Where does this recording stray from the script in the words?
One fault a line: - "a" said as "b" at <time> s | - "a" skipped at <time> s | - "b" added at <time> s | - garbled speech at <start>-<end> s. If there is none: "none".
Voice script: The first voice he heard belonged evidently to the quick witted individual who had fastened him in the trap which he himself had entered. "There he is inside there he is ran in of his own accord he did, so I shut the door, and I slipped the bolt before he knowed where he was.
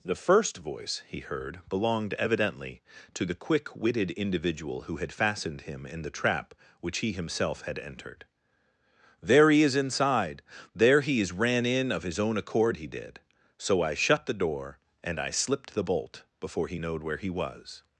none